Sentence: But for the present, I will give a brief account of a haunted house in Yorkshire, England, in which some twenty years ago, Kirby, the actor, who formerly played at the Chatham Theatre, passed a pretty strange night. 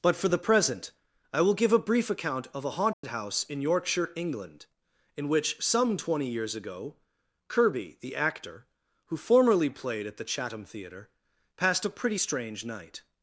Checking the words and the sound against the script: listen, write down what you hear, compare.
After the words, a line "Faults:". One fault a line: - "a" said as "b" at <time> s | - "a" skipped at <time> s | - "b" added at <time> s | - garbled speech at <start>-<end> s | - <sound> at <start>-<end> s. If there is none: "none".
But for the present, I will give a brief account of a haunted house in Yorkshire, England, in which some twenty years ago, Kirby, the actor, who formerly played at the Chatham Theatre, passed a pretty strange night.
Faults:
- dropout at 2.9-3.0 s